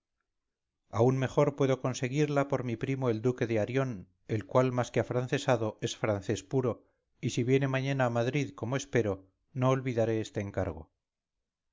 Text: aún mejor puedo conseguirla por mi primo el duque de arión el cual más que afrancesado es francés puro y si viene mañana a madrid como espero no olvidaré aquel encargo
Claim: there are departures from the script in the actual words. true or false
true